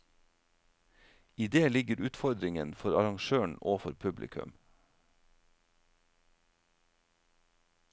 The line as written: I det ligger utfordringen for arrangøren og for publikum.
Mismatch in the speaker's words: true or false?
false